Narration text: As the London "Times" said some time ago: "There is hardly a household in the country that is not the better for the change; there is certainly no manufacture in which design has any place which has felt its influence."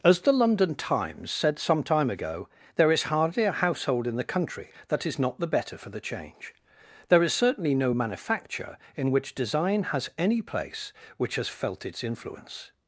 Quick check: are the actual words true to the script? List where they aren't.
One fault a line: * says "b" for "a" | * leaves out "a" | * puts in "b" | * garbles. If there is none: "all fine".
all fine